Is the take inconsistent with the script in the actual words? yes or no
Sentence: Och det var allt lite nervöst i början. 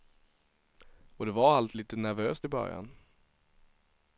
no